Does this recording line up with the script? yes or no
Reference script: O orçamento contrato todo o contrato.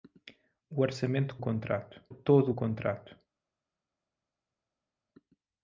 yes